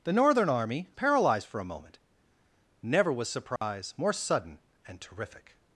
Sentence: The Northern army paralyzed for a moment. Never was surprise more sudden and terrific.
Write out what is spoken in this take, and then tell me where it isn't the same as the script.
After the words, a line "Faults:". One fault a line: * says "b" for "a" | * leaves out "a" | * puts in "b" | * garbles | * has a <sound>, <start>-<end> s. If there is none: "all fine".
The Northern army paralyzed for a moment. Never was surprise more sudden and terrific.
Faults:
* has a dropout, 3.6-3.6 s